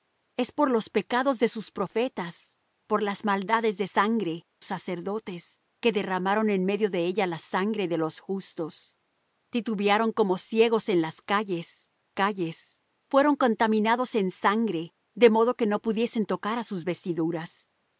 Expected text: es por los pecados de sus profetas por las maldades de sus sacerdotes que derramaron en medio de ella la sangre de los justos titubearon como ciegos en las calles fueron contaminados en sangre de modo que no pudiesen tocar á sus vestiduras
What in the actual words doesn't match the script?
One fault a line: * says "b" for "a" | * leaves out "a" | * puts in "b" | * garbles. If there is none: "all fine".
* says "sangre" for "sus"
* puts in "calles"